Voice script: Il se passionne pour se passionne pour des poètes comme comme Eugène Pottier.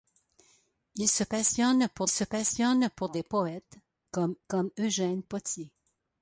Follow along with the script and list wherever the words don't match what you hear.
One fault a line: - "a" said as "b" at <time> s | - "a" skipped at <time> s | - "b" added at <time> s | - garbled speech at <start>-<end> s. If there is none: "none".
none